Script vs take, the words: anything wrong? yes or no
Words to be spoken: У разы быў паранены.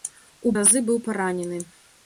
no